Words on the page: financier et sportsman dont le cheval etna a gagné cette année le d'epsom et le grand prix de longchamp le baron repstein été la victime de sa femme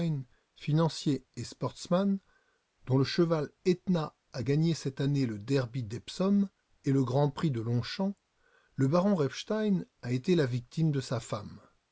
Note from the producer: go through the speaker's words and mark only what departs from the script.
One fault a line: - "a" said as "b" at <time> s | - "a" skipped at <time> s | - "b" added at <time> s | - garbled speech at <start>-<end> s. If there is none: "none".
- "derby" added at 5.4 s
- "a" added at 10.0 s